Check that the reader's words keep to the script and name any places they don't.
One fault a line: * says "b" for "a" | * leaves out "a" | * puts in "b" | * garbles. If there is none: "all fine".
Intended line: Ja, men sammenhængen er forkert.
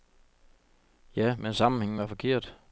* says "var" for "er"